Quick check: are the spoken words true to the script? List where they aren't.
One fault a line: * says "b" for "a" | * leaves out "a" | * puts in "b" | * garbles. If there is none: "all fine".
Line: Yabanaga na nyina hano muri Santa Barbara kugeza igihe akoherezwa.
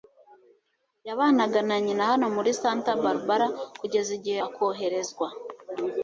all fine